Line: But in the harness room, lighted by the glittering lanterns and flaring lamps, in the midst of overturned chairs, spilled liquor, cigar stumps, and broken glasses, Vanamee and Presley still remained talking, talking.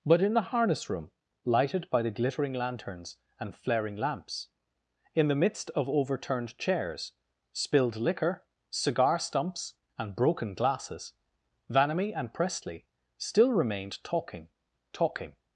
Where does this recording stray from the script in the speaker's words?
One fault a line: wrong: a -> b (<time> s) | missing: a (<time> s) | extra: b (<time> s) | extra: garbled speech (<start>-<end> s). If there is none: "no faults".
no faults